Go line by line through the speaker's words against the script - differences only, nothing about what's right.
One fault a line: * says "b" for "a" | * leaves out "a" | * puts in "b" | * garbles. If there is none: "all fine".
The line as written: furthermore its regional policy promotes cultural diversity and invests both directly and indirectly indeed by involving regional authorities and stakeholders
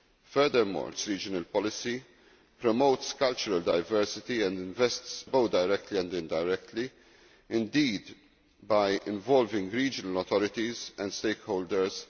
all fine